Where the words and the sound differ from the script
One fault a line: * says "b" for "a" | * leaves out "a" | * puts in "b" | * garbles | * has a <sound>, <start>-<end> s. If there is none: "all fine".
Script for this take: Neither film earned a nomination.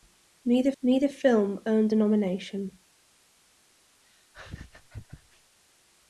* puts in "neither"
* has a laugh, 4.0-5.6 s